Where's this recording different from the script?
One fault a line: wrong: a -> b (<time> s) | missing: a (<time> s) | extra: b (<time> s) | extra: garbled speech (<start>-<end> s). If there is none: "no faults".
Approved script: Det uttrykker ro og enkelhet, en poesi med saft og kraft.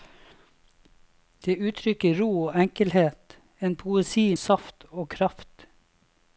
missing: med (4.3 s)